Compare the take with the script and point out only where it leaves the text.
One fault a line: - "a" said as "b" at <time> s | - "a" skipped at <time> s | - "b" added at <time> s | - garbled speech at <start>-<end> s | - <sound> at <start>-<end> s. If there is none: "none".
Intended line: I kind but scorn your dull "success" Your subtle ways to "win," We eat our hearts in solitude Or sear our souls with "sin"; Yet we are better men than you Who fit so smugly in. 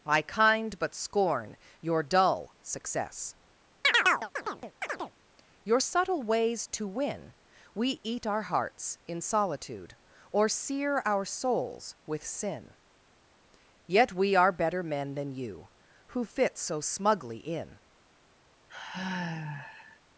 - chirp at 3.8-5.1 s
- sigh at 18.7-20.0 s